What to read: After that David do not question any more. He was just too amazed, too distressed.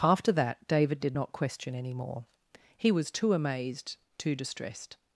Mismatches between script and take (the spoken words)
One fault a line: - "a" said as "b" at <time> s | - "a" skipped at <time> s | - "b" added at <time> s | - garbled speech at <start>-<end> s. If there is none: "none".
- "do" said as "did" at 1.0 s
- "just" skipped at 3.1 s